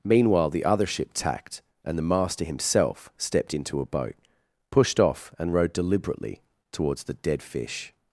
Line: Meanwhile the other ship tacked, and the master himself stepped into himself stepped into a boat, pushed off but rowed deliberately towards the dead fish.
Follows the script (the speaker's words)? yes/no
no